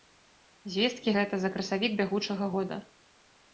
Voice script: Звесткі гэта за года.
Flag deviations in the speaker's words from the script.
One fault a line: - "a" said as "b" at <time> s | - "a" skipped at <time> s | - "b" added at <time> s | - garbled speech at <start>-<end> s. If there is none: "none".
- "красавік бягучага" added at 1.6 s